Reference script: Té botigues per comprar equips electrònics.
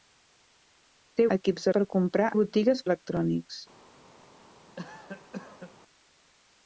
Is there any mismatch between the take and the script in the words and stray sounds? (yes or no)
yes